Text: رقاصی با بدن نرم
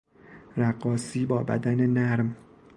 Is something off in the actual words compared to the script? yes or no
no